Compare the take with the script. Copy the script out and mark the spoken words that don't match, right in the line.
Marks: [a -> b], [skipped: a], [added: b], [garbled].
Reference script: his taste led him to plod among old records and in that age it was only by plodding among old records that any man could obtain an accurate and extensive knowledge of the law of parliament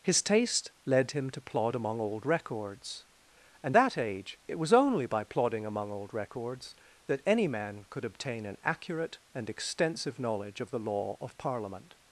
his taste led him to plod among old records and [skipped: in] that age it was only by plodding among old records that any man could obtain an accurate and extensive knowledge of the law of parliament